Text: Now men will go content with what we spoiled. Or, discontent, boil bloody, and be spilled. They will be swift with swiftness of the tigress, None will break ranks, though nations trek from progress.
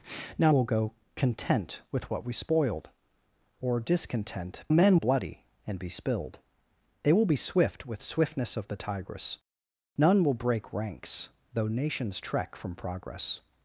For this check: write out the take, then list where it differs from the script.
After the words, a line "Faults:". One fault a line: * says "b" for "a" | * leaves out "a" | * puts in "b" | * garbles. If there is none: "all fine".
Now will go content with what we spoiled. Or, discontent, men bloody, and be spilled. They will be swift with swiftness of the tigress, None will break ranks, though nations trek from progress.
Faults:
* leaves out "men"
* says "men" for "boil"